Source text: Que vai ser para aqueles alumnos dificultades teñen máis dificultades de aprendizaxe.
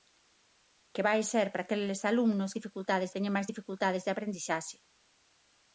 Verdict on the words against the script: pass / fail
pass